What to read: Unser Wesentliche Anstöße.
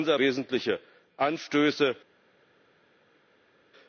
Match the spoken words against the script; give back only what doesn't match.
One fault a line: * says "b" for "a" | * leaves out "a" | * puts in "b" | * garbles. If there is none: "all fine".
all fine